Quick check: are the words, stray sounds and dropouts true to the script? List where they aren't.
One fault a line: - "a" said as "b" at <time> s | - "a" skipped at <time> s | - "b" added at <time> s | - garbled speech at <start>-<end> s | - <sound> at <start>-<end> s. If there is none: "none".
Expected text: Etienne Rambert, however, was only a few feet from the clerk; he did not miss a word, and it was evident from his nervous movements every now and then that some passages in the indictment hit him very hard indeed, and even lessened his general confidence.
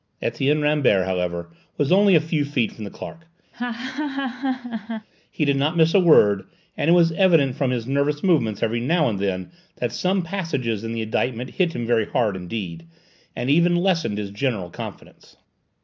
- laugh at 3.5-5.1 s